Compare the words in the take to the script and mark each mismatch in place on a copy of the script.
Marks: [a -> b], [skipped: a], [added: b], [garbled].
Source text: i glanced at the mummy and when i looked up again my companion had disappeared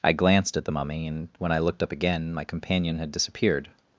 i glanced at the mummy and when i looked up again my companion had disappeared